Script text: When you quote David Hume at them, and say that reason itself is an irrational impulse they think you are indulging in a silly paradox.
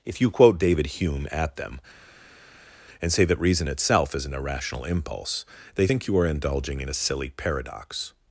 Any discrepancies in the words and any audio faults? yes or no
yes